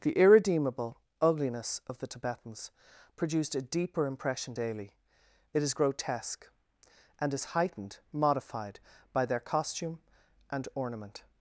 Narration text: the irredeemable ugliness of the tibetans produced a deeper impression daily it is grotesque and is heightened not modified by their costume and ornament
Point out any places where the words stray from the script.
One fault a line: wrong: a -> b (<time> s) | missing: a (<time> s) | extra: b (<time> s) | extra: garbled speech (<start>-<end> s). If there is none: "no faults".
missing: not (8.0 s)